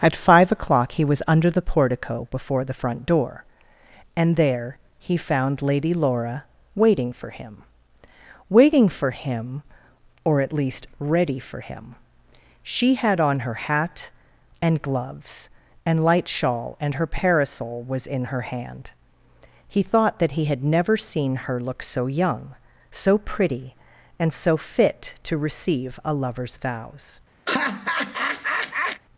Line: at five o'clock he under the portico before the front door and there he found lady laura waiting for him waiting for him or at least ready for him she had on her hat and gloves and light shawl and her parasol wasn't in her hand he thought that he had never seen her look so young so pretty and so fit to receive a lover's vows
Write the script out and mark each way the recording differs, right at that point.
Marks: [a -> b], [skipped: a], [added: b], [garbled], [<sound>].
at five o'clock he [added: was] under the portico before the front door and there he found lady laura waiting for him waiting for him or at least ready for him she had on her hat and gloves and light shawl and her parasol [wasn't -> was] in her hand he thought that he had never seen her look so young so pretty and so fit to receive a lover's vows [laugh]